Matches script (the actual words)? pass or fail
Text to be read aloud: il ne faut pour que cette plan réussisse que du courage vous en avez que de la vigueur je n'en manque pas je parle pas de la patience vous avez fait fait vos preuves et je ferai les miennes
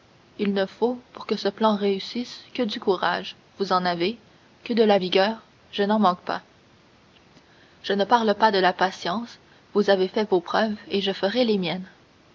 fail